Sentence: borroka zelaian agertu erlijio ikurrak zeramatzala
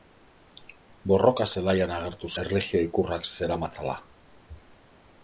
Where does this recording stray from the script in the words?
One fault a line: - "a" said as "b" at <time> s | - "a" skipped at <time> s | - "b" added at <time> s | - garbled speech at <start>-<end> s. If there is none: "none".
none